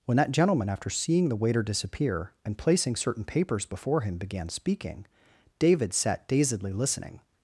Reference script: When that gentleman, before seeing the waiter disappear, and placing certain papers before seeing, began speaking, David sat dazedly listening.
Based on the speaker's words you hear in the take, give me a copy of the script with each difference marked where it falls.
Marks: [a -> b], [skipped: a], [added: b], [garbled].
When that gentleman, [before -> after] seeing the waiter disappear, and placing certain papers before [seeing, -> him] began speaking, David sat dazedly listening.